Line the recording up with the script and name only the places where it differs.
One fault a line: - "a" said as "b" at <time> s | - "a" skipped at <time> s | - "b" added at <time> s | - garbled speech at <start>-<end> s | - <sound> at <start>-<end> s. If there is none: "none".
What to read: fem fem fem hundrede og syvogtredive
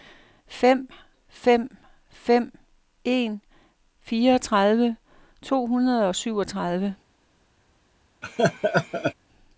- "en fireogtredive to" added at 3.0 s
- laugh at 8.2-9.1 s